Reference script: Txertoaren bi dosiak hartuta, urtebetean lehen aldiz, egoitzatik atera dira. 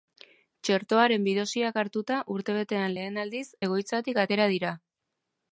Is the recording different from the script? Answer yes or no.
no